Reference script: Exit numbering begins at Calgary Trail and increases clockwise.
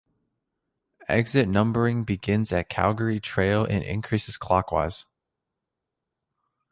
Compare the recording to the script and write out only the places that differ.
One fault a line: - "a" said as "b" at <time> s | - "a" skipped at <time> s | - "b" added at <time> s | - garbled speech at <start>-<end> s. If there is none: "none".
none